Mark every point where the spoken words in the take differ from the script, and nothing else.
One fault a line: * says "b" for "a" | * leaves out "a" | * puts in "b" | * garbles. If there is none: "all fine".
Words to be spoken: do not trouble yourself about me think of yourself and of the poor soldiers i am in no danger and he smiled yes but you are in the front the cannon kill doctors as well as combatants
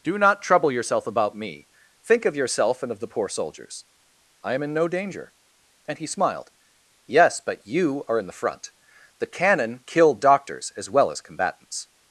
all fine